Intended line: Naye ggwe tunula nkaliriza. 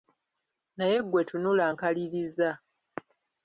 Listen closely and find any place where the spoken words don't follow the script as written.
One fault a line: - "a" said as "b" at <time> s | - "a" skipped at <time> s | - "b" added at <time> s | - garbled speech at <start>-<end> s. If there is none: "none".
none